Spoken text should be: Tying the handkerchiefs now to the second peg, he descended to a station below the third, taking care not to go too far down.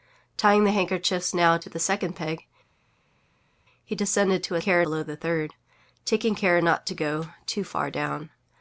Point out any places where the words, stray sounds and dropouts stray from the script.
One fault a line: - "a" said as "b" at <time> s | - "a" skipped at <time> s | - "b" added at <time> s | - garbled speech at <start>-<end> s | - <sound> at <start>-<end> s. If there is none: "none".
- "station" said as "care" at 4.6 s